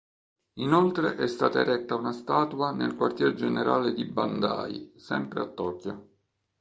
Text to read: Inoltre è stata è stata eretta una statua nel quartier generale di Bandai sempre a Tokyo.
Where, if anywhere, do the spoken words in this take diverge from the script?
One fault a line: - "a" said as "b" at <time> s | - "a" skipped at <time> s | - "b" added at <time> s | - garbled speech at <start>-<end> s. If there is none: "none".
- "è stata" skipped at 1.6 s